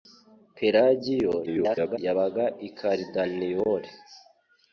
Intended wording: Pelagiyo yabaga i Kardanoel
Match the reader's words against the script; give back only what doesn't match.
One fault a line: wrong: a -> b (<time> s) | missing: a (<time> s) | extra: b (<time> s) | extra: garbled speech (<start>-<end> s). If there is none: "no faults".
extra: garbled speech (1.5-2.0 s)